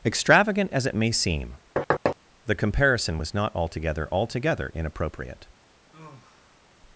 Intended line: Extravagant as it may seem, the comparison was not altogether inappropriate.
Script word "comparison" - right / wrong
right